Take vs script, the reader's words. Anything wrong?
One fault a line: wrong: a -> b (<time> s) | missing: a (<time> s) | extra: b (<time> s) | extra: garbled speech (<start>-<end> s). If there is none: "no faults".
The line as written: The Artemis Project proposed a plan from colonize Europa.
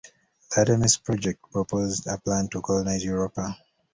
wrong: from -> to (2.5 s)